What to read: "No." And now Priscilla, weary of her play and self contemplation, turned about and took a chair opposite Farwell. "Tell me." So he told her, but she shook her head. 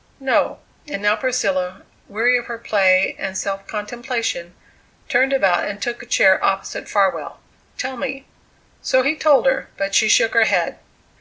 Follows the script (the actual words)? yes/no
yes